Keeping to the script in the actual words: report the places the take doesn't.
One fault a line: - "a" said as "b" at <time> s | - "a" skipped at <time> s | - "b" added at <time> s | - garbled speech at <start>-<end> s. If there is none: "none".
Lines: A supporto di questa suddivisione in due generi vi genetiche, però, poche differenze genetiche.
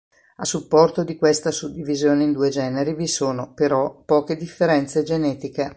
- "genetiche" said as "sono" at 3.1 s